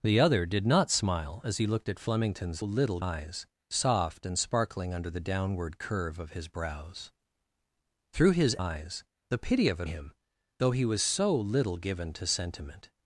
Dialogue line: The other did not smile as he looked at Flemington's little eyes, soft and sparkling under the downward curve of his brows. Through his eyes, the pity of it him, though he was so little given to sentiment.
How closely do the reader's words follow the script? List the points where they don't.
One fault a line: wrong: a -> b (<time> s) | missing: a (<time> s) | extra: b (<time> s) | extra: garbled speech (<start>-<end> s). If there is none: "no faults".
no faults